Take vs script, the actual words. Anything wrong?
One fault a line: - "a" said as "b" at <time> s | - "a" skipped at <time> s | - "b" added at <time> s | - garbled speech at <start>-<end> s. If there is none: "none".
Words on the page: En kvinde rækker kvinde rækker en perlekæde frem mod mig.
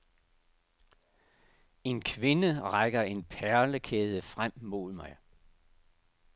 - "kvinde rækker" skipped at 3.0 s